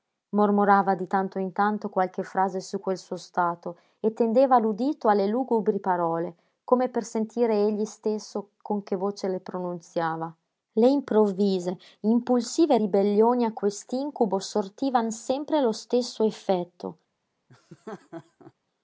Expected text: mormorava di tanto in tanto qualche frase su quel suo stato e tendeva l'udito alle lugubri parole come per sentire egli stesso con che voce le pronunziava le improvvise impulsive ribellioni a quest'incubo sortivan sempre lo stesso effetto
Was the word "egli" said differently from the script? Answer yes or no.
no